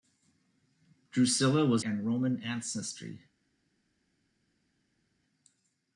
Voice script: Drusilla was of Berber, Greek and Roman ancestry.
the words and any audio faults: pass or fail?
fail